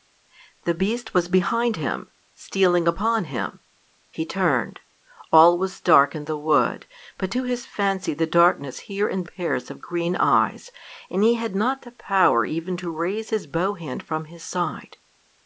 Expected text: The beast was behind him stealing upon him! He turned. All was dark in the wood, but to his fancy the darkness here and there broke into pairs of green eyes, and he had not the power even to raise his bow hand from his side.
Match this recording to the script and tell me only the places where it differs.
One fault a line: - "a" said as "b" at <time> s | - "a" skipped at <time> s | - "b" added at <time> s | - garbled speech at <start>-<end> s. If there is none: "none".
- "there broke into" skipped at 9.3 s